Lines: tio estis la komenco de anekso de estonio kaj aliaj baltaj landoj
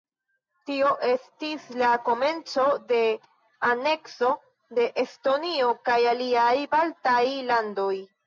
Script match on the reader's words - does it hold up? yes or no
yes